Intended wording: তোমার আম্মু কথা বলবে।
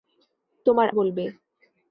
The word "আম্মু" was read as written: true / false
false